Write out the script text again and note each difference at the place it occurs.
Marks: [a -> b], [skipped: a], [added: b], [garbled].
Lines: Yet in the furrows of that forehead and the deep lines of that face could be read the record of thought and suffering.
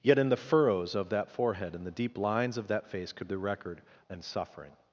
Yet in the furrows of that forehead and the deep lines of that face could [skipped: be read] the record [skipped: of thought] and suffering.